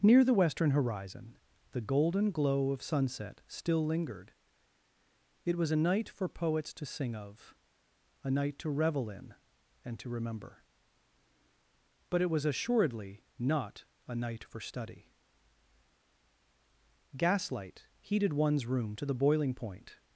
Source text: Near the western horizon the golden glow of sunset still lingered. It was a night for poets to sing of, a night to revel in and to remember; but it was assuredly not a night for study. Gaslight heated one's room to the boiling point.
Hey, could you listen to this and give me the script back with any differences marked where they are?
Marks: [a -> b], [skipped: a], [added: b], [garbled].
Near the western horizon the golden glow of sunset still lingered. It was a night for poets to sing of, a night to revel in and to remember; but it was assuredly not a night for study. Gaslight heated one's room to the boiling point.